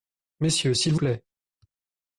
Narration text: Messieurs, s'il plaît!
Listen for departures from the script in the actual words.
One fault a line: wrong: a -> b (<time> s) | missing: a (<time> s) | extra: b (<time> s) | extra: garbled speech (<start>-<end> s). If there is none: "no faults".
no faults